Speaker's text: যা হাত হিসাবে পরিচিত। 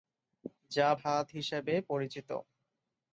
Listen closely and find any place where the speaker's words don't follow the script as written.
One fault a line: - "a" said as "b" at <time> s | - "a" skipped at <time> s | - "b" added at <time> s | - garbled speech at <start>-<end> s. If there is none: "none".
none